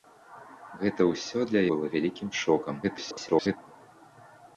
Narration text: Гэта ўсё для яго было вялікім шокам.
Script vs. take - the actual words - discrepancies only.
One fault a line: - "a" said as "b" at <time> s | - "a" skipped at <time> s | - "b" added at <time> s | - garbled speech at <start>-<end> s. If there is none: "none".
- "яго" skipped at 1.6 s
- garbled speech at 2.8-3.6 s